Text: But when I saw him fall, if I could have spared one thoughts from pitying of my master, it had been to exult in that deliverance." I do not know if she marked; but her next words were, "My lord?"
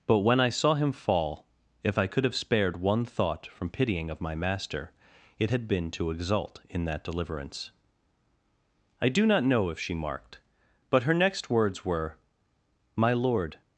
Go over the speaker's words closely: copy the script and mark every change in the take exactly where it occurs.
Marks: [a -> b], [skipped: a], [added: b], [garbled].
But when I saw him fall, if I could have spared one [thoughts -> thought] from pitying of my master, it had been to exult in that deliverance." I do not know if she marked; but her next words were, "My lord?"